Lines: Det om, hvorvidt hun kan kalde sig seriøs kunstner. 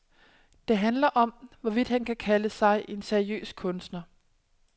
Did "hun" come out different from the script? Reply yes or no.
yes